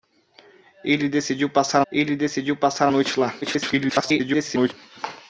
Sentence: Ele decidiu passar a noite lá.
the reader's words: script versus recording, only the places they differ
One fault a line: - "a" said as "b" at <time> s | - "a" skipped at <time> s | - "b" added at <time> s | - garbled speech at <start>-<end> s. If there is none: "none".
- "ele decidiu passar" added at 1.9 s
- garbled speech at 3.4-4.7 s